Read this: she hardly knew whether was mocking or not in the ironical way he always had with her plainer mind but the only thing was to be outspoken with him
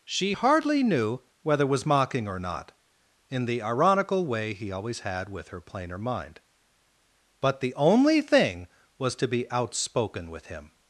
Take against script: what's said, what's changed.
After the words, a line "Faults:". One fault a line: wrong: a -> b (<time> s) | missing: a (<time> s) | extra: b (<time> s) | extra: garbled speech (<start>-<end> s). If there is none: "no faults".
she hardly knew whether was mocking or not in the ironical way he always had with her plainer mind but the only thing was to be outspoken with him
Faults:
no faults